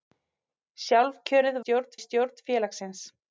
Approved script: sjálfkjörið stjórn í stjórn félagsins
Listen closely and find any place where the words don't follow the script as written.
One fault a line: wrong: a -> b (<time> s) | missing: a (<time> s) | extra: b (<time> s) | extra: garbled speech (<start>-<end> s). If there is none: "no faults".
no faults